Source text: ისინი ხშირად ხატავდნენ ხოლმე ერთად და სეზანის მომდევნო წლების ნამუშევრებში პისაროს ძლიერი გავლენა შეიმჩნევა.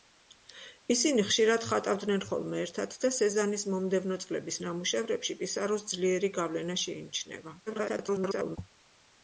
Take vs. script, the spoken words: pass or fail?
fail